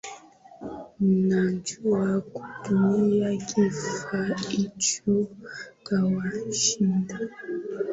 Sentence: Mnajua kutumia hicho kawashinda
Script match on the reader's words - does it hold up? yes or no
no